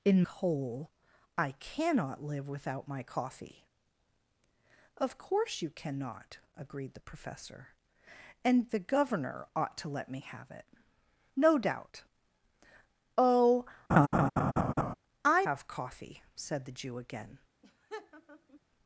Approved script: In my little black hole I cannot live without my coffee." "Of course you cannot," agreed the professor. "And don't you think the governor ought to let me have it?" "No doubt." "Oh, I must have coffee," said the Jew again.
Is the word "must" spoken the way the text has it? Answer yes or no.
no